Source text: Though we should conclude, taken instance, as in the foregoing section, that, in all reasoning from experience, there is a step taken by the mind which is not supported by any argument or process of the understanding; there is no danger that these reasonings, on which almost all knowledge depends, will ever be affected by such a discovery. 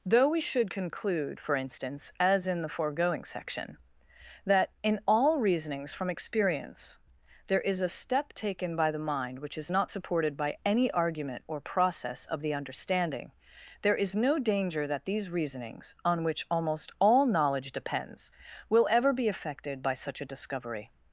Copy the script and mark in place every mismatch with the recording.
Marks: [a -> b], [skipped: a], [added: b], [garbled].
Though we should conclude, [taken -> for] instance, as in the foregoing section, that, in all [reasoning -> reasonings] from experience, there is a step taken by the mind which is not supported by any argument or process of the understanding; there is no danger that these reasonings, on which almost all knowledge depends, will ever be affected by such a discovery.